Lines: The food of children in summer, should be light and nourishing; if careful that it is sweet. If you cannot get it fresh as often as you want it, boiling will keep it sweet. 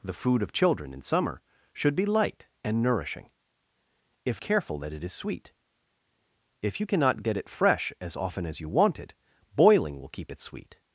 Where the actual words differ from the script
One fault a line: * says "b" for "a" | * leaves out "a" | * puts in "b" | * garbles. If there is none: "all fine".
all fine